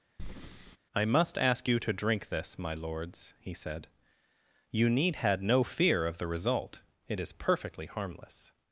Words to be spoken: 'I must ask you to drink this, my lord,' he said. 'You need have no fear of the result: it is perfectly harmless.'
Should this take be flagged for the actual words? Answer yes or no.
yes